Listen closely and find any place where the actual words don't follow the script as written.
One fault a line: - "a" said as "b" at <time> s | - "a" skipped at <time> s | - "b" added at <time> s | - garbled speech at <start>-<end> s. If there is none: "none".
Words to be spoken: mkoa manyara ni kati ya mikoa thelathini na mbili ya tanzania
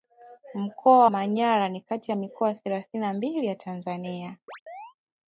none